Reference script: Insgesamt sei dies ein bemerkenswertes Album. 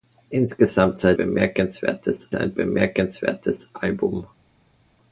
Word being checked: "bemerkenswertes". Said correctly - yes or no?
yes